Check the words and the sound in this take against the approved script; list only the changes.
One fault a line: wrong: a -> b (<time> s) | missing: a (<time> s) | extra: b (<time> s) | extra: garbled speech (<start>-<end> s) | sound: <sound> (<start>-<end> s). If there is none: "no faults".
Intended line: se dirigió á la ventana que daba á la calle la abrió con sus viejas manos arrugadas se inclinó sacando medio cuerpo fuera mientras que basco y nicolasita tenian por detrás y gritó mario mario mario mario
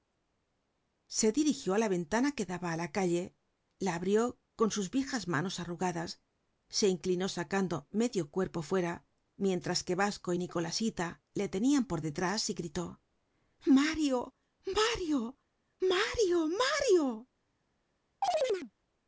extra: le (11.3 s)
sound: chirp (18.2-18.7 s)